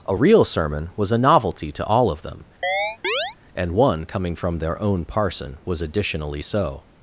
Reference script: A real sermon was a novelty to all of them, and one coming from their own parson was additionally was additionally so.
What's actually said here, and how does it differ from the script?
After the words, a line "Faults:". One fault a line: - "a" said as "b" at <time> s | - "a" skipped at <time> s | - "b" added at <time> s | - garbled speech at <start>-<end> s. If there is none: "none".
A real sermon was a novelty to all of them, and one coming from their own parson was additionally so.
Faults:
- "was additionally" skipped at 6.4 s